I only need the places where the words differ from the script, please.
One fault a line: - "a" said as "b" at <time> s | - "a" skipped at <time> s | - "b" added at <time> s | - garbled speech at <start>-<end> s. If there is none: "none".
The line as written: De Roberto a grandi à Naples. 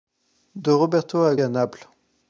- "grandi" skipped at 1.4 s